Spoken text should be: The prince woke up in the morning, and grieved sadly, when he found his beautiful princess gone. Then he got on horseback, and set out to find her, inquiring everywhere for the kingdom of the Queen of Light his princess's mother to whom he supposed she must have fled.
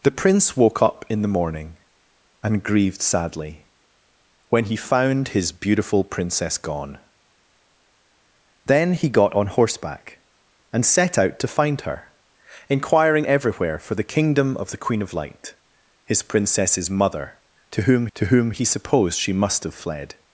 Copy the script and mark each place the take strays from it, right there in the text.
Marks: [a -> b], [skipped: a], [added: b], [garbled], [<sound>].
The prince woke up in the morning, and grieved sadly, when he found his beautiful princess gone. Then he got on horseback, and set out to find her, inquiring everywhere for the kingdom of the Queen of Light his princess's mother to whom [added: to whom] he supposed she must have fled.